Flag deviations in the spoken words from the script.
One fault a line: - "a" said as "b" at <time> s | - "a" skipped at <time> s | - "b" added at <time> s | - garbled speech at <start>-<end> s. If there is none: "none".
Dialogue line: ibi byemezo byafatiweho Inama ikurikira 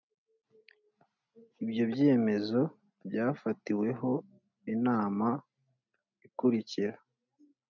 - "ibi" said as "ibyo" at 1.6 s